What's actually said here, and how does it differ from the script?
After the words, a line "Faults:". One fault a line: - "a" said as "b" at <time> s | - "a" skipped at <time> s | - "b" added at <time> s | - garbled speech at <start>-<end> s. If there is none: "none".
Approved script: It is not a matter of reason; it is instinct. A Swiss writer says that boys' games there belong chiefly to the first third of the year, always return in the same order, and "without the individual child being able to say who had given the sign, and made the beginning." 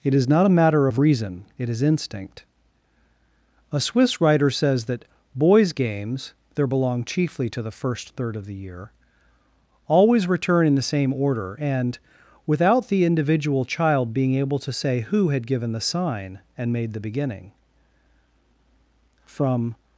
It is not a matter of reason; it is instinct. A Swiss writer says that boys' games there belong chiefly to the first third of the year, always return in the same order, and "without the individual child being able to say who had given the sign, and made the beginning." From
Faults:
- "From" added at 19.2 s